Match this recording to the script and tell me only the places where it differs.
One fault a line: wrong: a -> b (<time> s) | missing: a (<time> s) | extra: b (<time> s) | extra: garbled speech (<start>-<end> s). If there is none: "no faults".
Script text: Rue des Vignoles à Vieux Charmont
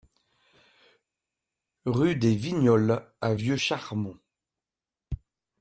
no faults